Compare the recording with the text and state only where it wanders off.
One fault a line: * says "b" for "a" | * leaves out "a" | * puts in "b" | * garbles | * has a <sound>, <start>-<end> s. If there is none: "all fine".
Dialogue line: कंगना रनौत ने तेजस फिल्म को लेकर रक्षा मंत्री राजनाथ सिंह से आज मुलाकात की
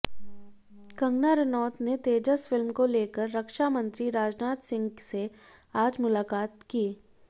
all fine